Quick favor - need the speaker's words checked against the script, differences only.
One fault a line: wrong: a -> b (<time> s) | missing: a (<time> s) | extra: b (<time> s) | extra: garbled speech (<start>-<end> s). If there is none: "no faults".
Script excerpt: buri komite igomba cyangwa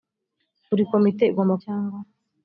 no faults